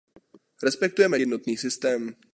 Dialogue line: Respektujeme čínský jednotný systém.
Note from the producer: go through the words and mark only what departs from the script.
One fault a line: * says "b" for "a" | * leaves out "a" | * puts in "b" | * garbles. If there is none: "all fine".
* leaves out "čínský"